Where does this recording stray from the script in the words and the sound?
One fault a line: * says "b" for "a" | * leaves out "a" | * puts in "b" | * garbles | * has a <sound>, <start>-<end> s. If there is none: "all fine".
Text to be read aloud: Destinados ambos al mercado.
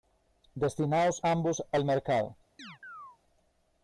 * has a chirp, 2.6-3.2 s